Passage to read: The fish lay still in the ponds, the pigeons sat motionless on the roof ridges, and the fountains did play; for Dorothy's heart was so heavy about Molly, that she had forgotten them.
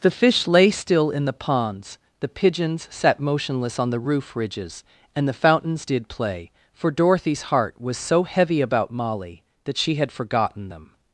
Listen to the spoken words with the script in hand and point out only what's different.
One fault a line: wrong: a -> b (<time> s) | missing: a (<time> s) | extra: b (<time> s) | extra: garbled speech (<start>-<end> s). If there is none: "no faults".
no faults